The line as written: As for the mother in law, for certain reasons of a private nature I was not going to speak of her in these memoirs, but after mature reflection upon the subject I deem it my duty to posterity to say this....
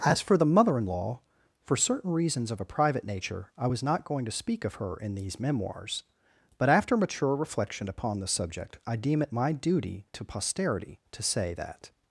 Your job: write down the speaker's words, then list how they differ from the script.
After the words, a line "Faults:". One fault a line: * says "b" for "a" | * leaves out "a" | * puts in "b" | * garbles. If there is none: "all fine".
As for the mother in law, for certain reasons of a private nature I was not going to speak of her in these memoirs, but after mature reflection upon the subject I deem it my duty to posterity to say that....
Faults:
* says "that" for "this"